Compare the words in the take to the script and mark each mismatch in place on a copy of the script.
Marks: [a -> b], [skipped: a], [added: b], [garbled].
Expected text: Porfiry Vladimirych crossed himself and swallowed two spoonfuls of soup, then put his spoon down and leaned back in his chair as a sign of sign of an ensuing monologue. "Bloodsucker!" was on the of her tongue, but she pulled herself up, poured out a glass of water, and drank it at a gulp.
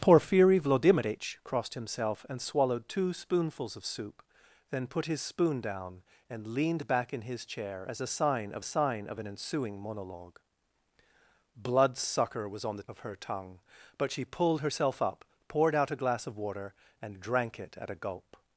Porfiry Vladimirych crossed himself and swallowed two spoonfuls of soup, then put his spoon down and leaned back in his chair as a sign of sign of an ensuing monologue. "Bloodsucker!" was on the of her tongue, but she pulled herself up, poured out a glass of water, and drank it at a gulp.